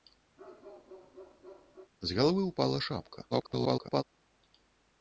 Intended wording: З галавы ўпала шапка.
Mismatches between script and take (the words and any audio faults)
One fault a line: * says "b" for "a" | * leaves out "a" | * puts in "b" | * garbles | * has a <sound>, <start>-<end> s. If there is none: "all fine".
* has a bark, 0.4-1.9 s
* garbles